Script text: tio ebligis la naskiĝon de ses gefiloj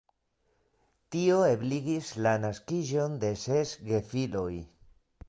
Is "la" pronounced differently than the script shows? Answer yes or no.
no